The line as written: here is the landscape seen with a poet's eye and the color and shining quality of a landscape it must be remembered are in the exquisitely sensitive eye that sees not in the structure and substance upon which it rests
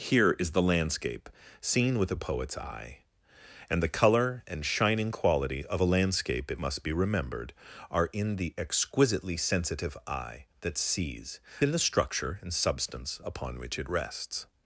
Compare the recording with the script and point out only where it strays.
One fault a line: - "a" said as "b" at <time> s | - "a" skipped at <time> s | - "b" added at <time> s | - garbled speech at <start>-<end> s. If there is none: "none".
- "not" skipped at 11.4 s